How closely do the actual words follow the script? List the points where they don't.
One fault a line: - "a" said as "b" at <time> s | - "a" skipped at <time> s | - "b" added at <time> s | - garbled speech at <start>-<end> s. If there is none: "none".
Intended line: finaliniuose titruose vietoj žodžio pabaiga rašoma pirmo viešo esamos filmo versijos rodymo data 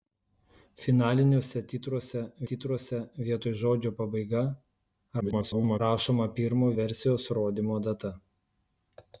- "titruose" added at 2.5 s
- garbled speech at 5.2-5.8 s
- "viešo esamos filmo" skipped at 6.7 s